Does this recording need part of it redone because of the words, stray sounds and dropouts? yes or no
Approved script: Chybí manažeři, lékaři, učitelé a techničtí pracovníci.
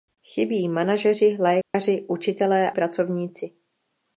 yes